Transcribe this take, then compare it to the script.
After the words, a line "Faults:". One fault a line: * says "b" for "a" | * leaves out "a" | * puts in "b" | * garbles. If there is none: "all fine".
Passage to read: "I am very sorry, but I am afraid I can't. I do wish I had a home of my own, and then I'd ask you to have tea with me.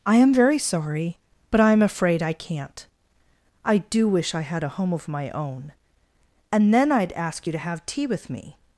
"I am very sorry, but I am afraid I can't. I do wish I had a home of my own, and then I'd ask you to have tea with me.
Faults:
all fine